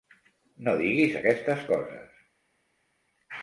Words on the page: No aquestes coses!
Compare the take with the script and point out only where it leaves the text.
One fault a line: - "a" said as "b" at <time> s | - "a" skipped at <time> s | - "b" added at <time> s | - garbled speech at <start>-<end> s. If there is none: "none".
- "diguis" added at 0.8 s